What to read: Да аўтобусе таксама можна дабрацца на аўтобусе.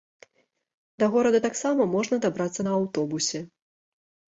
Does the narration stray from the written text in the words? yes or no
yes